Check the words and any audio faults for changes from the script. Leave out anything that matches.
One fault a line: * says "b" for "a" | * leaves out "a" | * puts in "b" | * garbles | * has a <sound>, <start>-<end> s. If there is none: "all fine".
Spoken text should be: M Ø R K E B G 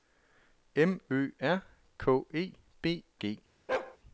* has a bark, 3.7-4.0 s